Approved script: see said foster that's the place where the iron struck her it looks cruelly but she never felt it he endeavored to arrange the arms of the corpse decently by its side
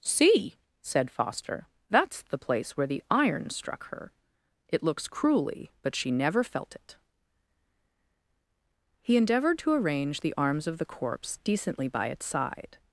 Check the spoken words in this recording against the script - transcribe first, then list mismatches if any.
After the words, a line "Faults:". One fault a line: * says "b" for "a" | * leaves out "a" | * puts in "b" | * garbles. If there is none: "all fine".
see said foster that's the place where the iron struck her it looks cruelly but she never felt it he endeavored to arrange the arms of the corpse decently by its side
Faults:
all fine